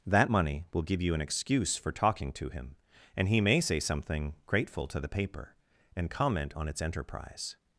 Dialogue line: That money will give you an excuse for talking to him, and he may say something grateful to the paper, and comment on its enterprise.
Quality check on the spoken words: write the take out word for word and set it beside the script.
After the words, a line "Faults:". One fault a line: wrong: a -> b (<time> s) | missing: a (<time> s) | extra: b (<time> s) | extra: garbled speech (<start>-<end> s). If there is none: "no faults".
That money will give you an excuse for talking to him, and he may say something grateful to the paper, and comment on its enterprise.
Faults:
no faults